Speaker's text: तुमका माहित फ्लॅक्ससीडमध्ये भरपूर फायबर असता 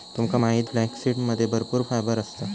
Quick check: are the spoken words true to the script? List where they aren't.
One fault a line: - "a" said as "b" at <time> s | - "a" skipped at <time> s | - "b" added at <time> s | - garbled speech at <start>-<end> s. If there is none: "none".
none